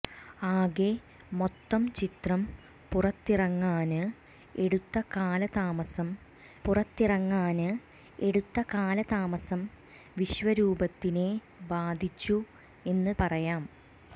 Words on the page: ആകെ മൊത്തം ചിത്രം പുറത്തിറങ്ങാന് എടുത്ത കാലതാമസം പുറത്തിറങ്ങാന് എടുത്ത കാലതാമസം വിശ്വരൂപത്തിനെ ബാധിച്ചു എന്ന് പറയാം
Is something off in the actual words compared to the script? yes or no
no